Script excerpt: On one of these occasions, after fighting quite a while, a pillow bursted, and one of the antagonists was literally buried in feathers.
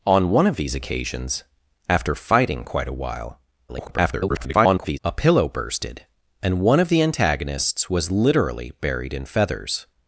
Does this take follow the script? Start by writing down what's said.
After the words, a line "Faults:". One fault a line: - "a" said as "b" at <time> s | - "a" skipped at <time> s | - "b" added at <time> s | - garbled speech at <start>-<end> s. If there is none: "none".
On one of these occasions, after fighting quite a while, [garbled] a pillow bursted, and one of the antagonists was literally buried in feathers.
Faults:
- garbled speech at 3.7-5.0 s